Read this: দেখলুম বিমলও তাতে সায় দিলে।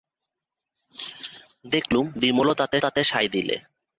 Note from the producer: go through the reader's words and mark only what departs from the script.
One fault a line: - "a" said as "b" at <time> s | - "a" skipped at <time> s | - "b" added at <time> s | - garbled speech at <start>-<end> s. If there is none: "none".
- "তাতে" added at 2.8 s